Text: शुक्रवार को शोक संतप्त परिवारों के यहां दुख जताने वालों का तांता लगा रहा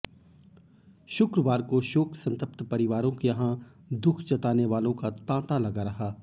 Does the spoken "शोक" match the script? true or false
true